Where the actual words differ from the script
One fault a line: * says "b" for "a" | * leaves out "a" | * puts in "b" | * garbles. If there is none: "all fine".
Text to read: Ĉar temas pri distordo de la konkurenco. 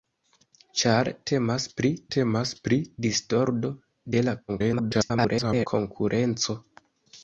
* puts in "temas pri"
* garbles